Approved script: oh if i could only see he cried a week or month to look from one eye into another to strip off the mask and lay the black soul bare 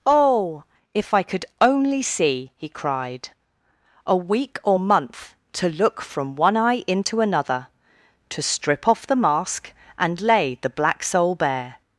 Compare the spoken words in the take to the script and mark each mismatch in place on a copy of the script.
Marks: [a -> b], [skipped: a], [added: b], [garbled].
oh if i could only see he cried a week or month to look from one eye into another to strip off the mask and lay the black soul bare